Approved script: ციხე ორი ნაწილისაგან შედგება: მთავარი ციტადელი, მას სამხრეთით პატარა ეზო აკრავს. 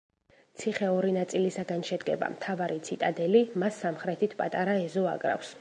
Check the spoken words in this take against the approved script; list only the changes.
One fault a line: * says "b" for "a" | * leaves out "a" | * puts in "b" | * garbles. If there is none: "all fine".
all fine